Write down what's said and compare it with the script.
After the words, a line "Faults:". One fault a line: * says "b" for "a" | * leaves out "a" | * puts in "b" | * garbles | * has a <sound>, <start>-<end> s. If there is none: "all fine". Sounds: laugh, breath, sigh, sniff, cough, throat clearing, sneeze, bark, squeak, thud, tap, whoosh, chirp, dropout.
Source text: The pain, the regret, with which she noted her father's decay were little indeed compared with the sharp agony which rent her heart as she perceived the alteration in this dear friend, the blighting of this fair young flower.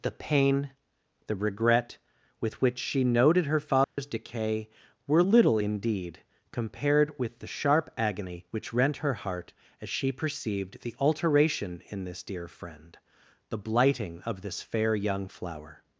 The pain, the regret, with which she noted her father's decay were little indeed compared with the sharp agony which rent her heart as she perceived the alteration in this dear friend, the blighting of this fair young flower.
Faults:
* has a dropout, 3.8-4.0 s